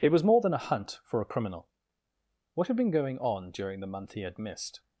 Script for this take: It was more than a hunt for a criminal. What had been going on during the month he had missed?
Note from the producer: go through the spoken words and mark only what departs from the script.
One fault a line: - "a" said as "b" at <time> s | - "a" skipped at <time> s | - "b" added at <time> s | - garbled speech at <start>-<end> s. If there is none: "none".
none